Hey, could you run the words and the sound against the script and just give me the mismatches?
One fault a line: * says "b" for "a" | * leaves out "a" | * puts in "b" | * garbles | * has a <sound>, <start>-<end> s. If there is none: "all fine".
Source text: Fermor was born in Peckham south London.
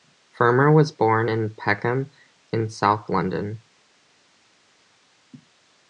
* puts in "in"